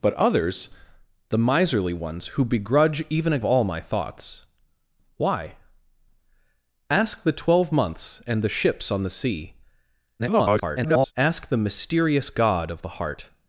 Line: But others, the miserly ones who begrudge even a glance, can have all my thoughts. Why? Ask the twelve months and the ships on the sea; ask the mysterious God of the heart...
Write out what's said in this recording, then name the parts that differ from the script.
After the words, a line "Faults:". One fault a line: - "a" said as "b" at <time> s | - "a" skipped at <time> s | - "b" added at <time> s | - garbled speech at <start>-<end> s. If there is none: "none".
But others, the miserly ones who begrudge even a all my thoughts. Why? Ask the twelve months and the ships on the sea; [garbled] ask the mysterious God of the heart...
Faults:
- "glance can have" skipped at 3.4 s
- garbled speech at 10.2-11.1 s